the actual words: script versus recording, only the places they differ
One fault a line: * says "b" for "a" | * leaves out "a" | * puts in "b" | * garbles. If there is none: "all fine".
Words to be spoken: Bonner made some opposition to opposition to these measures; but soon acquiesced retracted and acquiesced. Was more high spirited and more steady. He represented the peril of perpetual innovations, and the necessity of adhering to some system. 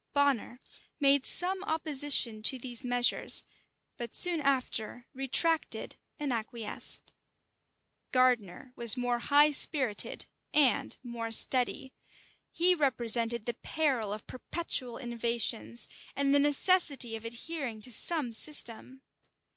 * leaves out "opposition to"
* says "after" for "acquiesced"
* puts in "Gardiner"